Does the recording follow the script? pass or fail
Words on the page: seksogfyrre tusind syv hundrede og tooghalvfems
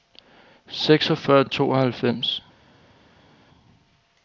fail